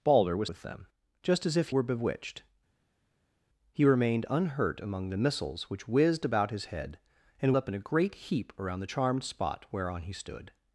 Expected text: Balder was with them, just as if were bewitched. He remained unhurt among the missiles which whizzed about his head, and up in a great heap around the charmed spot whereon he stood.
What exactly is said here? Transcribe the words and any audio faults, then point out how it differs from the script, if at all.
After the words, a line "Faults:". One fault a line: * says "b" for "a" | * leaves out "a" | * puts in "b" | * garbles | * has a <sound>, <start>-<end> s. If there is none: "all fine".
Balder was with them, just as if were bewitched. He remained unhurt among the missiles which whizzed about his head, and up in a great heap around the charmed spot whereon he stood.
Faults:
all fine